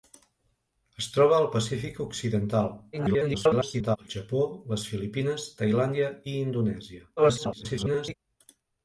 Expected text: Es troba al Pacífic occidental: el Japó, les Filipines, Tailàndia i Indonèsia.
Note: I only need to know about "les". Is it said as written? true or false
true